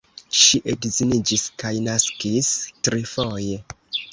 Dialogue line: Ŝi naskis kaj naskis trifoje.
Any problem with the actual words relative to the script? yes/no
yes